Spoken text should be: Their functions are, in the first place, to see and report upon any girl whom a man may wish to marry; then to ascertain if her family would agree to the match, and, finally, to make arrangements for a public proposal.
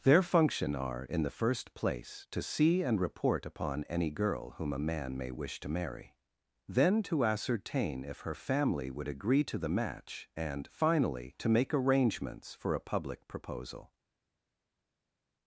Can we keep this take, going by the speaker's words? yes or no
no